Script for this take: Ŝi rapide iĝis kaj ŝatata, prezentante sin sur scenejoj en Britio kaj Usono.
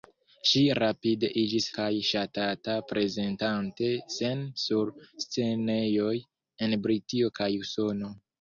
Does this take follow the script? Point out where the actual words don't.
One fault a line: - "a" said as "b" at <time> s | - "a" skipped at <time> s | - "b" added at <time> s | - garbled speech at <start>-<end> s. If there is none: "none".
none